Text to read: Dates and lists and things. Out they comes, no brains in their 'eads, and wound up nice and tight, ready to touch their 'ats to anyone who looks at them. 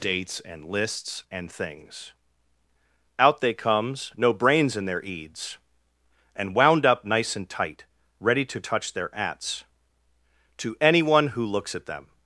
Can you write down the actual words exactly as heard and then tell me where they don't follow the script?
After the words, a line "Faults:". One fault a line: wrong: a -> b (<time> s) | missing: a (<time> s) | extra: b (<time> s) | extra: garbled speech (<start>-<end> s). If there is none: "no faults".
Dates and lists and things. Out they comes, no brains in their 'eads, and wound up nice and tight, ready to touch their 'ats to anyone who looks at them.
Faults:
no faults